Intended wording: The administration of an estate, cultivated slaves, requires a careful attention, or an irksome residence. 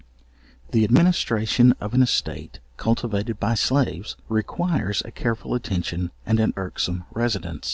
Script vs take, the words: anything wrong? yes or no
yes